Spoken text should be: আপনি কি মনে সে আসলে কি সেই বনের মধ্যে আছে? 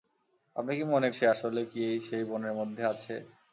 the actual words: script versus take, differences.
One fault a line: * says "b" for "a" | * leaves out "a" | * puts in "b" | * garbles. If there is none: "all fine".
all fine